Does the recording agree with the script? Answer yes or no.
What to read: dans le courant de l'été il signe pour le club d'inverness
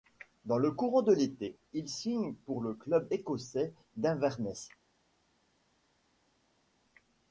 no